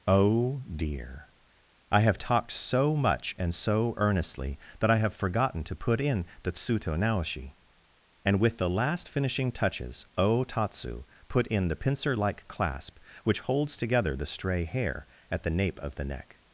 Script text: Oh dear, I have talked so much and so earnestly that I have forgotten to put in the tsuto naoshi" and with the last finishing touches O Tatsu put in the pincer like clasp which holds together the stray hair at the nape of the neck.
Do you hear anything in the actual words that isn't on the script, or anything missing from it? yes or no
no